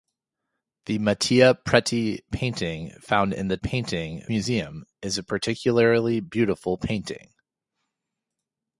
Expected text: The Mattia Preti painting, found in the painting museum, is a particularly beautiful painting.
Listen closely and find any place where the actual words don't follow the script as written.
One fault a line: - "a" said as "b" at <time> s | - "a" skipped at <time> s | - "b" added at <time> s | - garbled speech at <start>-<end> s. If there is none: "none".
none